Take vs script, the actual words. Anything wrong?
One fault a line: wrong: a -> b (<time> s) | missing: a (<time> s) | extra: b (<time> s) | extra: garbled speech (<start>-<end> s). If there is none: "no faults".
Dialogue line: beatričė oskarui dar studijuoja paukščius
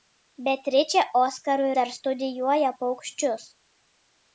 no faults